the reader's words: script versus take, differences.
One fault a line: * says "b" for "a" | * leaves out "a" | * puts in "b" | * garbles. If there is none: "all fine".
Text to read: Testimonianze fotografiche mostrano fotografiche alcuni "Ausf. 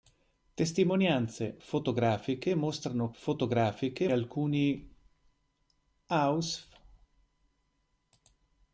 all fine